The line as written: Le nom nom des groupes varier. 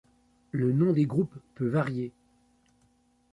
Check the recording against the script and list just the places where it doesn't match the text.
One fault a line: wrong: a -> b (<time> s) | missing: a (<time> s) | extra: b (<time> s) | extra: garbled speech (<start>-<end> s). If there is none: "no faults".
missing: nom (0.9 s)
extra: peut (1.6 s)